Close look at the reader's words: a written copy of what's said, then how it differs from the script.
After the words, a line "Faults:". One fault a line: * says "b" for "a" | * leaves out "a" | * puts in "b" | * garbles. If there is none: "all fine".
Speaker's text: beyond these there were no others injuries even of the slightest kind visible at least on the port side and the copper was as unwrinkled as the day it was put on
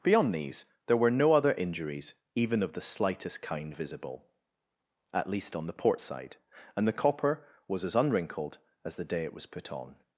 beyond these there were no other injuries even of the slightest kind visible at least on the port side and the copper was as unwrinkled as the day it was put on
Faults:
* says "other" for "others"